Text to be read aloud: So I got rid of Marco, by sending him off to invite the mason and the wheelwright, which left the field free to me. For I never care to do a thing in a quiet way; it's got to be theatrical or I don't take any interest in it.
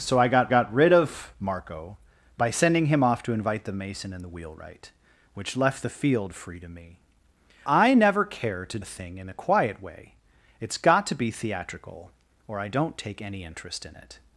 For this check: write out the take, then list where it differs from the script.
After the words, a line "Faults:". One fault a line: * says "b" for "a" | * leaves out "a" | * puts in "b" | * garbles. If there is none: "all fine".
So I got got rid of Marco, by sending him off to invite the mason and the wheelwright, which left the field free to me. I never care to a thing in a quiet way; it's got to be theatrical or I don't take any interest in it.
Faults:
* puts in "got"
* leaves out "For"
* leaves out "do"